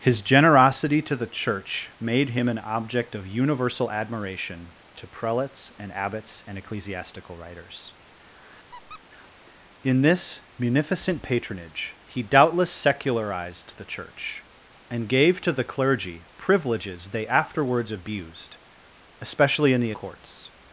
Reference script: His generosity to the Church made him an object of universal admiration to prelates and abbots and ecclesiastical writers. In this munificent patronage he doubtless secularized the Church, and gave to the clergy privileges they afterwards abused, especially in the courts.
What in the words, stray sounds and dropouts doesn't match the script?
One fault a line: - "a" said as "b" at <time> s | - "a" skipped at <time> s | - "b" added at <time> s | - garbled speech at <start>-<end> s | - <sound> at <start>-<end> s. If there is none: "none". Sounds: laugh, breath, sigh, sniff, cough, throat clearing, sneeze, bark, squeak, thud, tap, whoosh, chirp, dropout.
- squeak at 8.7-9.0 s